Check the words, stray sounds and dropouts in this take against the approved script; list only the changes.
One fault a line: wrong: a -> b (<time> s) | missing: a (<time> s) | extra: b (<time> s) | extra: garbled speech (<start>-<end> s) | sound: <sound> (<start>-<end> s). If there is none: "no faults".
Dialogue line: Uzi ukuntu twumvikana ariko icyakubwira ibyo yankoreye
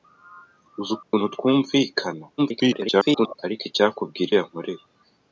sound: dropout (1.0-1.1 s)
extra: garbled speech (2.4-3.4 s)
missing: ibyo (4.3 s)